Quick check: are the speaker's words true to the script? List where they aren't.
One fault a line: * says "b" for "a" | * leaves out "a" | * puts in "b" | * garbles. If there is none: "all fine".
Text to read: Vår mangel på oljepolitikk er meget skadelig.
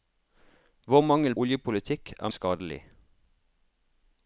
* leaves out "på"
* leaves out "meget"